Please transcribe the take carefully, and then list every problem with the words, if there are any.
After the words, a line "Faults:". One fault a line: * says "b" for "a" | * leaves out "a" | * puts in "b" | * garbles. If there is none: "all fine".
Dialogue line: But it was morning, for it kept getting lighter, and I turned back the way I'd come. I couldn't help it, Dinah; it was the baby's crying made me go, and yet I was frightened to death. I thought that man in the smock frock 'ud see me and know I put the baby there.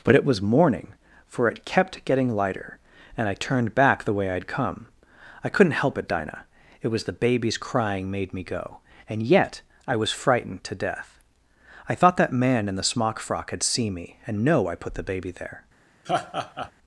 But it was morning, for it kept getting lighter, and I turned back the way I'd come. I couldn't help it, Dinah; it was the baby's crying made me go, and yet I was frightened to death. I thought that man in the smock frock 'had seen me and know I put the baby there.
Faults:
* says "had seen" for "ud see"